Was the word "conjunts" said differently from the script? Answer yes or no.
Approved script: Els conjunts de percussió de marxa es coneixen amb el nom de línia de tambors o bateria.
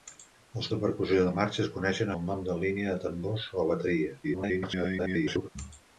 yes